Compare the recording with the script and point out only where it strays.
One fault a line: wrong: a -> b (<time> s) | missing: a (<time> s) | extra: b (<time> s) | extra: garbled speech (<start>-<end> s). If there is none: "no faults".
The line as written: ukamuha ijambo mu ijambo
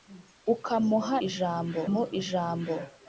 no faults